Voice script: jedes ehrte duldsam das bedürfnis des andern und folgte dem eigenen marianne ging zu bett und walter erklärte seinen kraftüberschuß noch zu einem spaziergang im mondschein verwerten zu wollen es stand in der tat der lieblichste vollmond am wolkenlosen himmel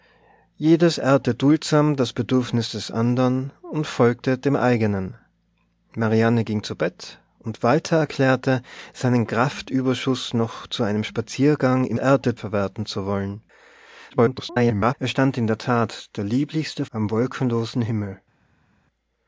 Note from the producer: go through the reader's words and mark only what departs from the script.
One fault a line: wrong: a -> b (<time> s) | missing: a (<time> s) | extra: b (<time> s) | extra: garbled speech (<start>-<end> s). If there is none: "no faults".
wrong: mondschein -> ehrte (12.0 s)
extra: garbled speech (14.1-14.9 s)
missing: vollmond (16.9 s)